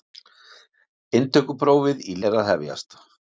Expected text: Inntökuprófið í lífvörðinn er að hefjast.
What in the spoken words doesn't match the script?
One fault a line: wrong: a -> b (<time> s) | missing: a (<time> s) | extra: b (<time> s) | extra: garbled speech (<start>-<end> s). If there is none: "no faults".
missing: lífvörðinn (2.2 s)